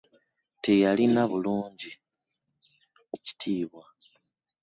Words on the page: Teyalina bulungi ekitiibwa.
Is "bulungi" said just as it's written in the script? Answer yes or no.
yes